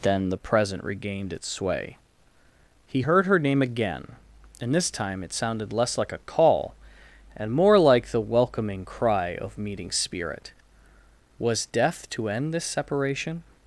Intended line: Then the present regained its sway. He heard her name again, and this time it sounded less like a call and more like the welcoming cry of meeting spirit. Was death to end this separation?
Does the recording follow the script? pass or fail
pass